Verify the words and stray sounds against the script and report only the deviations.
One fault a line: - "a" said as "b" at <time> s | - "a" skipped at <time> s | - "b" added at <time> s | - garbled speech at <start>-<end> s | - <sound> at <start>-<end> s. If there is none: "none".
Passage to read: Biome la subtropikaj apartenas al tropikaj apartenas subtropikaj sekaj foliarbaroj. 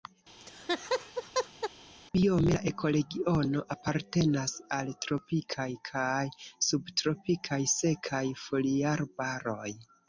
- laugh at 0.4-1.7 s
- "subtropikaj" said as "ekoregiono" at 2.7 s
- "apartenas" said as "kaj" at 5.9 s